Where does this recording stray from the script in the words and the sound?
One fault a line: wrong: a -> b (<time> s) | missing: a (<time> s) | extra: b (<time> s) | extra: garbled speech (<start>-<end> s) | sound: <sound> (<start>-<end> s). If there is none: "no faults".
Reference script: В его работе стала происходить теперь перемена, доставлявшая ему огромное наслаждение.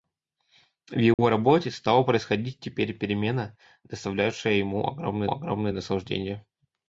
sound: dropout (1.1-1.2 s)
extra: огромное (5.3 s)